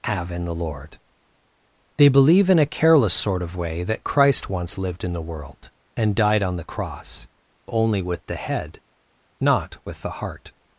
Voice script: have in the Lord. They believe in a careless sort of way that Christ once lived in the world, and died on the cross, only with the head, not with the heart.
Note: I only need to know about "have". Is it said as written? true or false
true